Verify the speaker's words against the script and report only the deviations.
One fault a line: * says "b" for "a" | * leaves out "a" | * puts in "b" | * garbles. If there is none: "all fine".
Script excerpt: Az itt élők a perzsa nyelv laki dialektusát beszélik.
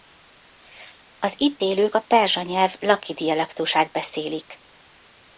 all fine